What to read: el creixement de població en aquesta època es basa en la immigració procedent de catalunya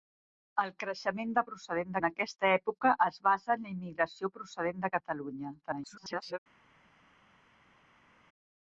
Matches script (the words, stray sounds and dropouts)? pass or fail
fail